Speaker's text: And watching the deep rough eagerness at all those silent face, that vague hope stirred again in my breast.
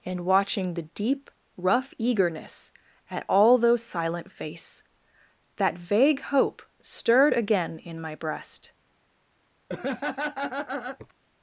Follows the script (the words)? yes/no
yes